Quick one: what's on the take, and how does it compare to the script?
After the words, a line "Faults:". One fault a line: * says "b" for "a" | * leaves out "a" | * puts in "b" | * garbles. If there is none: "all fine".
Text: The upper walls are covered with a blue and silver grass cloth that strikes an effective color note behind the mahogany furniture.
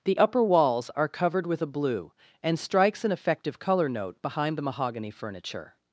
The upper walls are covered with a blue and strikes an effective color note behind the mahogany furniture.
Faults:
* leaves out "silver grass cloth that"